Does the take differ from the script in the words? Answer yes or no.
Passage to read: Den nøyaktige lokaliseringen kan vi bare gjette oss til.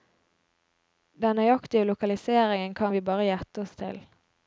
no